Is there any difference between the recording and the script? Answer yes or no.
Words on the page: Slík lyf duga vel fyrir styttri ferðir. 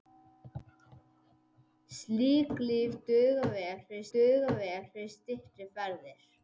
yes